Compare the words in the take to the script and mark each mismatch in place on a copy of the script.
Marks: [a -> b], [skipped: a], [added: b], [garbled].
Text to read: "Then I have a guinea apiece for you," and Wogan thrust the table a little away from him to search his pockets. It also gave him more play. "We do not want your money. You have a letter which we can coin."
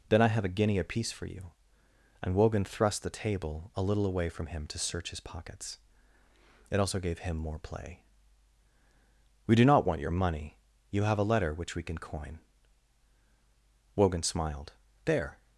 "Then I have a guinea apiece for you," and Wogan thrust the table a little away from him to search his pockets. It also gave him more play. "We do not want your money. You have a letter which we can coin." [added: Wogan smiled There]